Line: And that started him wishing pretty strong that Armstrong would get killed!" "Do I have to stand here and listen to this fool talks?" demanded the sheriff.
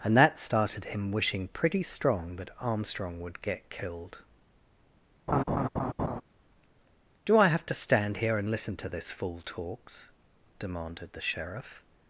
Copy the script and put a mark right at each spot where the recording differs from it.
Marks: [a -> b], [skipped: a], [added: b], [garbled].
And that started him wishing pretty strong that Armstrong would get killed!" "Do I have to stand here and listen to this fool talks?" demanded the sheriff.